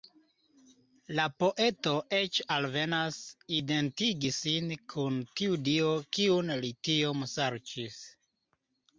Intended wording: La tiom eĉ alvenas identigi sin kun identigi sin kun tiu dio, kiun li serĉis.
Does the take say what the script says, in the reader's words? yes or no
no